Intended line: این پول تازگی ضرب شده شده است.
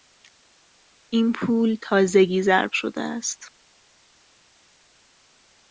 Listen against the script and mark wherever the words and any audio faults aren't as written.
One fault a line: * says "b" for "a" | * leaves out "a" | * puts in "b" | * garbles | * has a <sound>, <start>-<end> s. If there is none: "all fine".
* leaves out "شده"